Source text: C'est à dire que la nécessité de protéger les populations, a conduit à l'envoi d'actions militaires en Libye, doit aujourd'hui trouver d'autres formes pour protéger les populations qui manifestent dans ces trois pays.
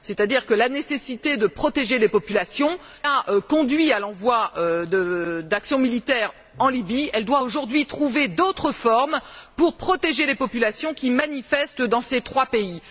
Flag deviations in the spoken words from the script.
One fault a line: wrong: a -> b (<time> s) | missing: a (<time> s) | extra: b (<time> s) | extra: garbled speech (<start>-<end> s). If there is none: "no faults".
no faults